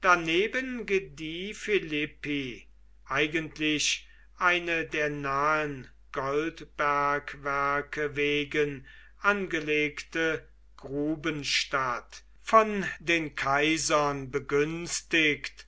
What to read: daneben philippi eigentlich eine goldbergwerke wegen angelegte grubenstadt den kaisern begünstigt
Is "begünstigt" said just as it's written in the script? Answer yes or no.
yes